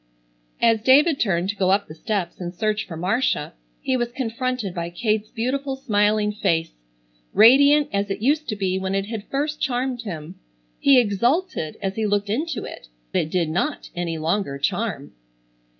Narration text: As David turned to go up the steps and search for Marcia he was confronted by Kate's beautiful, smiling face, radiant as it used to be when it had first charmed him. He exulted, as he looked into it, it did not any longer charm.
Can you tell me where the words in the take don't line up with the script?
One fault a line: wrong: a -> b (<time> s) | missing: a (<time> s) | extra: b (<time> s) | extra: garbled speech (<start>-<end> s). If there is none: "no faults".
no faults